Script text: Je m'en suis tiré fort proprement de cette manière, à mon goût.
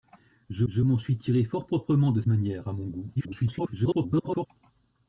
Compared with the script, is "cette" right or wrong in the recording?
wrong